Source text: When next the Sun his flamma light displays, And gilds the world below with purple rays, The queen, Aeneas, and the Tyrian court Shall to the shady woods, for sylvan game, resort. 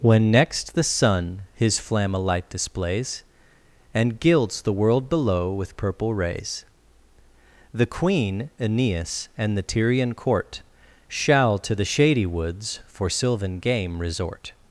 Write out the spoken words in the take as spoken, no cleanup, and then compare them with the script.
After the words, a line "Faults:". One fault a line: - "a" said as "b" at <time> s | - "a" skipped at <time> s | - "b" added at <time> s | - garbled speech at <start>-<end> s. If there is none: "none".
When next the Sun his flamma light displays, And gilds the world below with purple rays, The queen, Aeneas, and the Tyrian court Shall to the shady woods, for sylvan game, resort.
Faults:
none